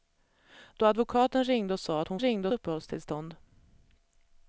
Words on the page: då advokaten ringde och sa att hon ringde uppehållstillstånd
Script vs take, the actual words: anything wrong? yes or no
no